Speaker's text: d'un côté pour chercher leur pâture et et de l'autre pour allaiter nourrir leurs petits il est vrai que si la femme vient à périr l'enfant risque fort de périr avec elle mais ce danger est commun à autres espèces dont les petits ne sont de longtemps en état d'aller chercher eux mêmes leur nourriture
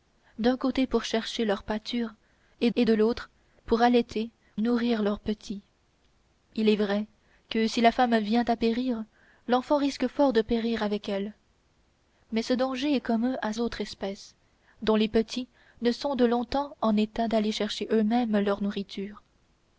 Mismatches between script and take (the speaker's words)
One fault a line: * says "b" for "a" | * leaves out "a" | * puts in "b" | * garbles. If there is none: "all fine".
all fine